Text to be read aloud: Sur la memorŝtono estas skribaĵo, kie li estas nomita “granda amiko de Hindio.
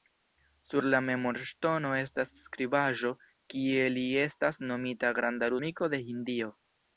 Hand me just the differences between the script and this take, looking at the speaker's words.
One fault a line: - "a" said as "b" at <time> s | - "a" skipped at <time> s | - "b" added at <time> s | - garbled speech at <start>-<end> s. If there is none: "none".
none